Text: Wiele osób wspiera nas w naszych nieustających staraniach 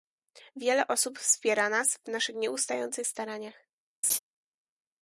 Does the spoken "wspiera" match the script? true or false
true